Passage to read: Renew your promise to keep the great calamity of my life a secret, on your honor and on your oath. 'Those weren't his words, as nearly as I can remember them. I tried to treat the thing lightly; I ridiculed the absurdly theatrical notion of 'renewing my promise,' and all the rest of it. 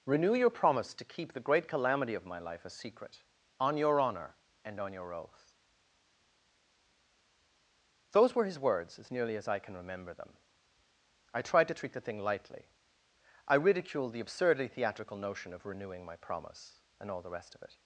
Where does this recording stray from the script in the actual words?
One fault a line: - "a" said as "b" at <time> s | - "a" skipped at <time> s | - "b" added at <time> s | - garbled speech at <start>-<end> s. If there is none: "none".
- "weren't" said as "were" at 8.3 s